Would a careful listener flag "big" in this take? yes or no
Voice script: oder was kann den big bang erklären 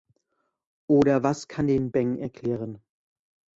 yes